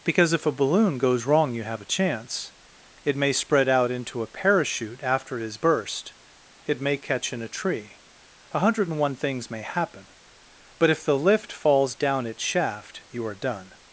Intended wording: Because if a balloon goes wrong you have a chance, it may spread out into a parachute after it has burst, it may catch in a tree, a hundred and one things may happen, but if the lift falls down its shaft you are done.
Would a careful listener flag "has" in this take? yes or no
yes